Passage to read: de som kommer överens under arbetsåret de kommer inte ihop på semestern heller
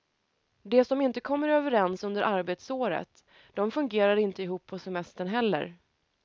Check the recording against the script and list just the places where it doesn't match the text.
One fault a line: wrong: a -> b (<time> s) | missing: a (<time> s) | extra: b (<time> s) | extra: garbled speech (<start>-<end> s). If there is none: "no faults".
extra: inte (1.0 s)
wrong: kommer -> fungerar (3.7 s)